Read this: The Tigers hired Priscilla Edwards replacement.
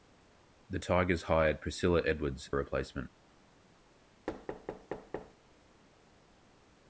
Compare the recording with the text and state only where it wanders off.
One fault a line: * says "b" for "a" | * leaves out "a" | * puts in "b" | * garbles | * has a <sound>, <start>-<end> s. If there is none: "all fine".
* has a thud, 4.3-5.4 s